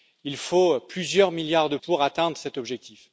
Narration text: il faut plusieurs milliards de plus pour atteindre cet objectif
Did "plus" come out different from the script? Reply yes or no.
yes